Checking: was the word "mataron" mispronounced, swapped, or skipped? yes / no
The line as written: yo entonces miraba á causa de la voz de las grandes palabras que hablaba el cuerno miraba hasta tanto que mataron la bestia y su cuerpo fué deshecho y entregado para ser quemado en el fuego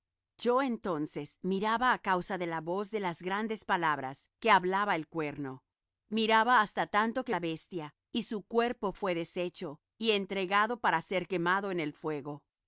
yes